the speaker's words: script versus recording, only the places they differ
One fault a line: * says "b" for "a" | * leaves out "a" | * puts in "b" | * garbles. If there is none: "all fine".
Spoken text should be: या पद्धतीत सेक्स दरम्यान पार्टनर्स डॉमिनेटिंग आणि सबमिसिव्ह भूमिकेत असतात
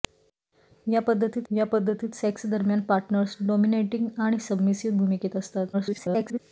* puts in "या पद्धतीत"
* garbles